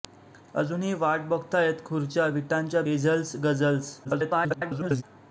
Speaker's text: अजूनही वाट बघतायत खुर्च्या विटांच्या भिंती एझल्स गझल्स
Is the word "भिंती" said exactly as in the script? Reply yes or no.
no